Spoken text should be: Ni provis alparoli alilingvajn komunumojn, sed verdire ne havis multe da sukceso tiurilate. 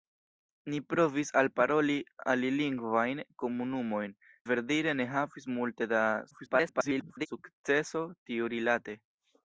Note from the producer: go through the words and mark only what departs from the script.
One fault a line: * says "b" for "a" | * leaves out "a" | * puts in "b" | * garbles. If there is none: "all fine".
* leaves out "sed"
* garbles